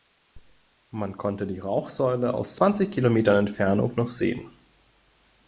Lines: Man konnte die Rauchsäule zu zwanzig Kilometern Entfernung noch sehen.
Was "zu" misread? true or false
true